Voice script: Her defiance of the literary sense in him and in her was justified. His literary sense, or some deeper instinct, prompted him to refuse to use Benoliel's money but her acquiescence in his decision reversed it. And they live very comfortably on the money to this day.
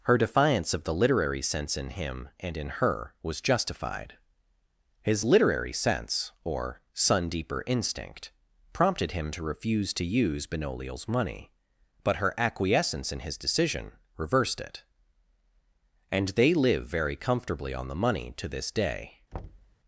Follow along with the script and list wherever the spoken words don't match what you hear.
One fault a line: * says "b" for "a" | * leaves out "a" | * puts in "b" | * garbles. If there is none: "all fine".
* says "sun" for "some"